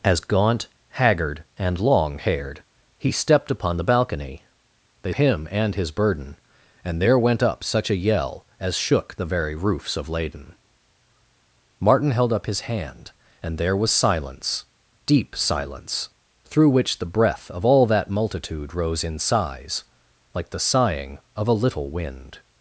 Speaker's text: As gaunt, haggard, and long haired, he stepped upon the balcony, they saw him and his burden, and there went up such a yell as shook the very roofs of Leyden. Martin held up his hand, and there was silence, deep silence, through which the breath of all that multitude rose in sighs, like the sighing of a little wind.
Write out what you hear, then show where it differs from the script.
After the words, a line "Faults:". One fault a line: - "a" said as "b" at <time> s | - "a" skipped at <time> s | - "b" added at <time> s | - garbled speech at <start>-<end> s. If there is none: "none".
As gaunt, haggard, and long haired, he stepped upon the balcony, they him and his burden, and there went up such a yell as shook the very roofs of Leyden. Martin held up his hand, and there was silence, deep silence, through which the breath of all that multitude rose in sighs, like the sighing of a little wind.
Faults:
- "saw" skipped at 5.1 s